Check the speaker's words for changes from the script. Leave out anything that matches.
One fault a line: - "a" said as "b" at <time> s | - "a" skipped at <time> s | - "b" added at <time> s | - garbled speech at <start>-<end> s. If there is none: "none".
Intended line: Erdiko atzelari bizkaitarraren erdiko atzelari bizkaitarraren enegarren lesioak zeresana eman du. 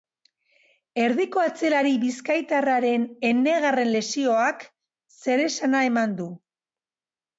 - "erdiko atzelari bizkaitarraren" skipped at 3.0 s